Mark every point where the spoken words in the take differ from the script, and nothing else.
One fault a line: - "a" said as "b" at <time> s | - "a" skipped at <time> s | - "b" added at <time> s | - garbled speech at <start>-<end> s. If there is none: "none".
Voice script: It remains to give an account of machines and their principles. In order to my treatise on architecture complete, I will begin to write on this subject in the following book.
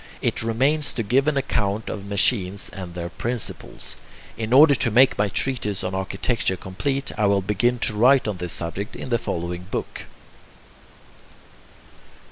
- "make" added at 4.9 s